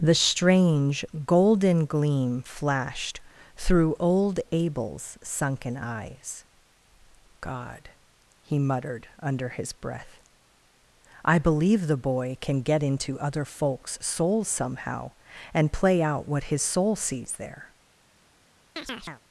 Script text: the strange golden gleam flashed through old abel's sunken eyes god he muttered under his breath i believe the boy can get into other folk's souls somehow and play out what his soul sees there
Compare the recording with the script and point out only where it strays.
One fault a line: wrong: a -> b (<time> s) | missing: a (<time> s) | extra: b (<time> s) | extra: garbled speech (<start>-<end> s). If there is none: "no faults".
no faults